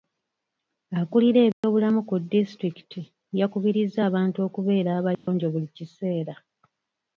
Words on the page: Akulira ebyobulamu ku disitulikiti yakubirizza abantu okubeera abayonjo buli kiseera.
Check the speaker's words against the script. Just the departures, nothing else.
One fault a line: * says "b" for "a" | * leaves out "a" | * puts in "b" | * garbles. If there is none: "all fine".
all fine